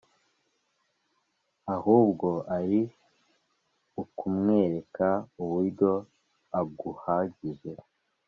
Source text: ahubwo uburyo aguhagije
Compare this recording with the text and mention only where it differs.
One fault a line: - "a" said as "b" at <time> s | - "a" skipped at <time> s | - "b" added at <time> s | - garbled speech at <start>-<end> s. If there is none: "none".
- "ari ukumwereka" added at 2.6 s